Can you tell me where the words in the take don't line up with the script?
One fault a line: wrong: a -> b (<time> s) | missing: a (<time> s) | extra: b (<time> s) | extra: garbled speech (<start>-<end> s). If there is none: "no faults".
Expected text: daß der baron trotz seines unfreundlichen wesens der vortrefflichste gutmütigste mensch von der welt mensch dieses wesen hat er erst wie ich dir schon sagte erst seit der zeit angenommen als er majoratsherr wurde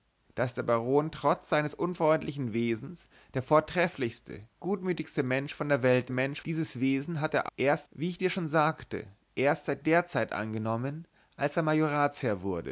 no faults